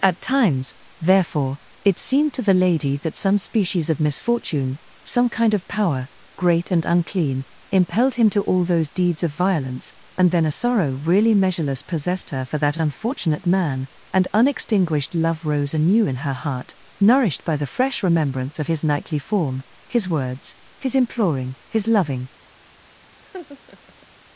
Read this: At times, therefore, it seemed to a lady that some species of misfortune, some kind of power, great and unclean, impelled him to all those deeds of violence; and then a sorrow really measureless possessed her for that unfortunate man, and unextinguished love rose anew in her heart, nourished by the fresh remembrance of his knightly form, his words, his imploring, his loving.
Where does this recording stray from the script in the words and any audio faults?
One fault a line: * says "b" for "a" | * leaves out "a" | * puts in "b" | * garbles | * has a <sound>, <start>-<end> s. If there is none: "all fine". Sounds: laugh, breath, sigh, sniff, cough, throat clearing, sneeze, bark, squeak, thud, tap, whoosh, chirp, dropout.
* says "the" for "a"
* has a laugh, 23.2-24.1 s